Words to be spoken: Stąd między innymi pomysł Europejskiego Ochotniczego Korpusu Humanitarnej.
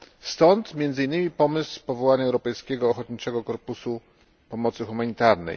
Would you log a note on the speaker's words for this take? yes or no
yes